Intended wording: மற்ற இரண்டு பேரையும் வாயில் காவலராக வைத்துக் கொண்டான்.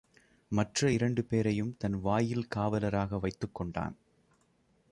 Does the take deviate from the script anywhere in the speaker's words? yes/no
yes